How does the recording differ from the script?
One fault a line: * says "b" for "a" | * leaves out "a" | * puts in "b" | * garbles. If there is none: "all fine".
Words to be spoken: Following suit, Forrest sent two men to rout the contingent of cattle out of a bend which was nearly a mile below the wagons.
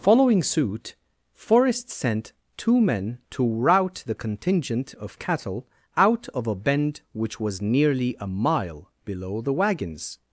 all fine